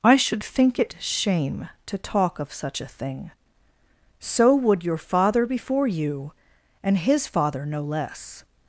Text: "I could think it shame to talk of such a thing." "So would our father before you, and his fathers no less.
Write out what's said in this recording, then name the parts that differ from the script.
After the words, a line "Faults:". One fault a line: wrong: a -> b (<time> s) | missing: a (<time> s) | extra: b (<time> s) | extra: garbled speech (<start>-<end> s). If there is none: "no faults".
"I should think it shame to talk of such a thing." "So would your father before you, and his father no less.
Faults:
wrong: could -> should (0.1 s)
wrong: our -> your (4.8 s)
wrong: fathers -> father (7.3 s)